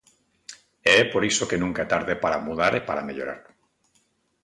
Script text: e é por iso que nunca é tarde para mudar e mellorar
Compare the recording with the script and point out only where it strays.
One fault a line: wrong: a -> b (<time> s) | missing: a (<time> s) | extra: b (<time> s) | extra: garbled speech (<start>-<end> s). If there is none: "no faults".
extra: para (2.9 s)